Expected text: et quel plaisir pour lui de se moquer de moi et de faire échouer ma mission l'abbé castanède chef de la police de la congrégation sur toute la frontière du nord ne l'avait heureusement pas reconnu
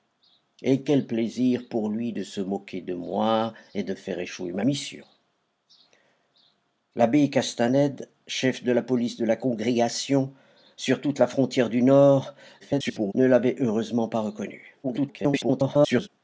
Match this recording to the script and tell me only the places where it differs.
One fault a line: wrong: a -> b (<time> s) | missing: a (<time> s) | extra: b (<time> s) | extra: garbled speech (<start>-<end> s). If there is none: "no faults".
extra: garbled speech (12.6-13.1 s)
extra: garbled speech (14.8-16.1 s)